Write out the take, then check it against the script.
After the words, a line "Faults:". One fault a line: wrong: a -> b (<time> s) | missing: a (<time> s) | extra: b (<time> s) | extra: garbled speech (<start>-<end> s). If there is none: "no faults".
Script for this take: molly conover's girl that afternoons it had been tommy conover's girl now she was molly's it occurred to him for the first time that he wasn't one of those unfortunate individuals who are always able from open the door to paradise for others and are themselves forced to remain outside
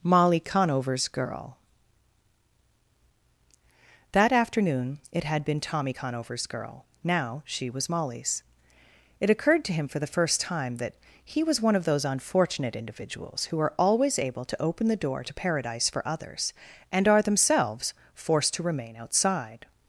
molly conover's girl that afternoon it had been tommy conover's girl now she was molly's it occurred to him for the first time that he was one of those unfortunate individuals who are always able to open the door to paradise for others and are themselves forced to remain outside
Faults:
wrong: afternoons -> afternoon (4.3 s)
wrong: wasn't -> was (11.4 s)
wrong: from -> to (14.4 s)